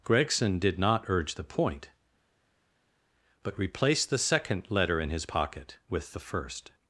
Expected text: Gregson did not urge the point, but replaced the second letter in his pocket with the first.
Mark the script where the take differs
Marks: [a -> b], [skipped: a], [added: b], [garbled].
Gregson did not urge the point, but replaced the second letter in his pocket with the first.